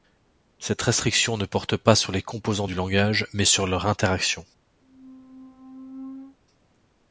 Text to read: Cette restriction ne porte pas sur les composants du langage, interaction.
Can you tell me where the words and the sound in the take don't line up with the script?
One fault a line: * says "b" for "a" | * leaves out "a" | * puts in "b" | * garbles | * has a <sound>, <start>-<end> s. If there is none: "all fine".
* puts in "mais sur leur"
* has a squeak, 4.8-6.4 s